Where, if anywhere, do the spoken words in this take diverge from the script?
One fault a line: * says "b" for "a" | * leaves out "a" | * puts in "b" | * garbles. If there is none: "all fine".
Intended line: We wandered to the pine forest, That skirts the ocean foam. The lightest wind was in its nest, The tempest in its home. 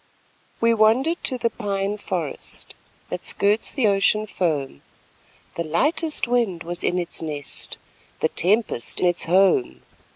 * leaves out "in"